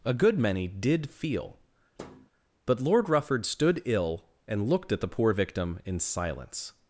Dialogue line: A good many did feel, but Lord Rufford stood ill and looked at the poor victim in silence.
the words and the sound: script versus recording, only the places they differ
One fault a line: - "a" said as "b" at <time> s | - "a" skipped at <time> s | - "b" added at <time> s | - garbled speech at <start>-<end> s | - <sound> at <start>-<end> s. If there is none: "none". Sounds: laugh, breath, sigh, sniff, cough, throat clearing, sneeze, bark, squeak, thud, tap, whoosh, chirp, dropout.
- thud at 2.0-2.3 s